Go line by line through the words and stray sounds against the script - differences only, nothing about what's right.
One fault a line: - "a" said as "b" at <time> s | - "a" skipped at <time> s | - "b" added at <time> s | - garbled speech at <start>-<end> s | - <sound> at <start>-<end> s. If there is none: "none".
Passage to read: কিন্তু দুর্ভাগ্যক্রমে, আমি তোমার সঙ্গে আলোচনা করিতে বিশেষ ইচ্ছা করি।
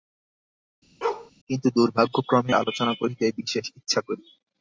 - bark at 1.0-1.3 s
- "আমি তোমার সঙ্গে" skipped at 2.5 s